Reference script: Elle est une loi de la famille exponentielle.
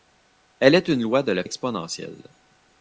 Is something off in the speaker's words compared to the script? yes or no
yes